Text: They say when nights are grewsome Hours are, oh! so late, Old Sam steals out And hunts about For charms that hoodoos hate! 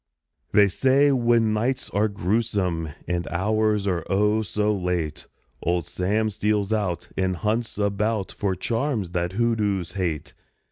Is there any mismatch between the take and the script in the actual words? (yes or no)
yes